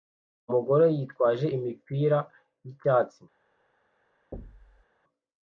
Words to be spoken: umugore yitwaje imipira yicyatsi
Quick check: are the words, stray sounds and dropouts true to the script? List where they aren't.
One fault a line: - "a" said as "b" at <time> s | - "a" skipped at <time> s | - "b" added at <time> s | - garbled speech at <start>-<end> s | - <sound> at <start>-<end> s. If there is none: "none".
- thud at 4.3-4.9 s